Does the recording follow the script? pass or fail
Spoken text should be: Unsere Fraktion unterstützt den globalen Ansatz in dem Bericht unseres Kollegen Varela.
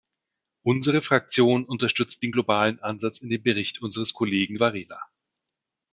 pass